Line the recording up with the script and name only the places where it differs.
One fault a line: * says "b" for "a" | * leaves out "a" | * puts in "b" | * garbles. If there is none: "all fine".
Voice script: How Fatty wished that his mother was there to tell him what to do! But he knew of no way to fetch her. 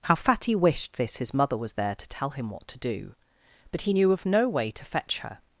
* says "this" for "that"